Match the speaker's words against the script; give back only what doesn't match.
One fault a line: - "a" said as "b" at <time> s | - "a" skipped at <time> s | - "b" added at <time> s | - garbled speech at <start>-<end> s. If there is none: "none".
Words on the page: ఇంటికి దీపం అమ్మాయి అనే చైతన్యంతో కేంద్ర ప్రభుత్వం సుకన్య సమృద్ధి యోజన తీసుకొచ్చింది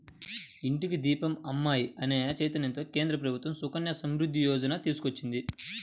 none